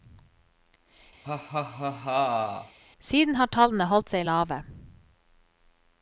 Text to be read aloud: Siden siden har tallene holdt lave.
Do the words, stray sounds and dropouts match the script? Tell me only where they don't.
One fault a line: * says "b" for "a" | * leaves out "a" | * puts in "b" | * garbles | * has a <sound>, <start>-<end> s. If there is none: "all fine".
* has a laugh, 1.2-2.8 s
* leaves out "siden"
* puts in "seg"